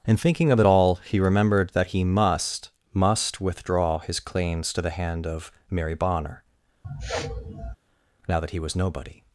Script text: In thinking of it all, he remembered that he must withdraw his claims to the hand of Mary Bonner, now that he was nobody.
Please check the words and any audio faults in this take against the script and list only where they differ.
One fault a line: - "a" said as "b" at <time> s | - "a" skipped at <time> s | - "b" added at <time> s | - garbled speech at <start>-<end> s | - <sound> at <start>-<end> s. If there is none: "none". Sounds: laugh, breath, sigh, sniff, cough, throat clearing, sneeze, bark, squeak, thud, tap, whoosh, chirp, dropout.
- "must" added at 2.9 s
- sniff at 6.8-7.8 s